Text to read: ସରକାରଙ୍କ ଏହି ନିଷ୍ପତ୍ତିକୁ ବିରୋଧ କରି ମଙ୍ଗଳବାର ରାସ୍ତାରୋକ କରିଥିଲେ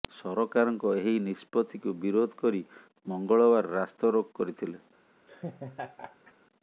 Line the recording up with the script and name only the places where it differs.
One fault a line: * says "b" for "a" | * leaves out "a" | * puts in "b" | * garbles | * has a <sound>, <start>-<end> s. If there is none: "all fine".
* has a laugh, 5.3-6.3 s